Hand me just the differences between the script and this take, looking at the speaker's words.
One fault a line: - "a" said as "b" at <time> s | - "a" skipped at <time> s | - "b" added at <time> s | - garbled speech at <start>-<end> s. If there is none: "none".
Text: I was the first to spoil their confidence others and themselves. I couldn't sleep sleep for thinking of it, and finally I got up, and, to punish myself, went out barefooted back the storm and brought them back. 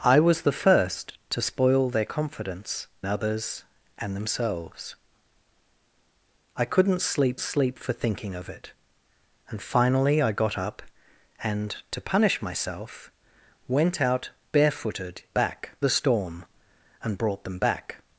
none